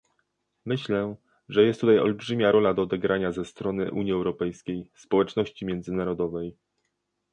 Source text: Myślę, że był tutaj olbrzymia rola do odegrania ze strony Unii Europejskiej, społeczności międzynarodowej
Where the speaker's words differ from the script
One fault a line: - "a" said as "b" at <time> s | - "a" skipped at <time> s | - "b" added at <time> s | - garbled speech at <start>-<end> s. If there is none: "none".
- "był" said as "jest" at 1.6 s